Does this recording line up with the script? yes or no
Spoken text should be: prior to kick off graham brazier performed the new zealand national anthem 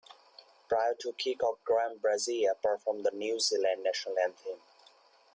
yes